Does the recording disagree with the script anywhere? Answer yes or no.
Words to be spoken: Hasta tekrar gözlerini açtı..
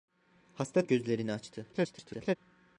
yes